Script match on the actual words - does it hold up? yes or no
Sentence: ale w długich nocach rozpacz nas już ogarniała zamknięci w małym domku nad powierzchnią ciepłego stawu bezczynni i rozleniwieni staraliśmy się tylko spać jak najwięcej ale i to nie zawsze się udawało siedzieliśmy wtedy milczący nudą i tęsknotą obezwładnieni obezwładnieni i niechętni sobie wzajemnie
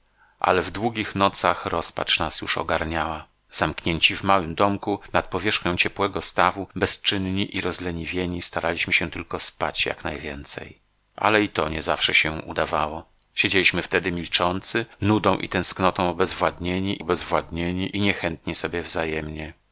yes